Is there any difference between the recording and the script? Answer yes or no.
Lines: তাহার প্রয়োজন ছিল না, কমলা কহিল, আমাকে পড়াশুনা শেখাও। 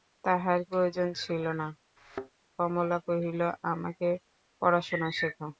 no